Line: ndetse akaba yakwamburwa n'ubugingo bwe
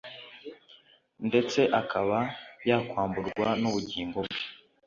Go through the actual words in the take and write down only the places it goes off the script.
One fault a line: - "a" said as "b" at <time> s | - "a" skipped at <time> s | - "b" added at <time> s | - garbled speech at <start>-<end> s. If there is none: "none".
none